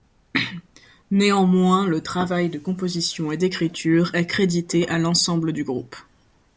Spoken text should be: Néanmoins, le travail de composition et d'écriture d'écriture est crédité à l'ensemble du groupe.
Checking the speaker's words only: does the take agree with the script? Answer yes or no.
no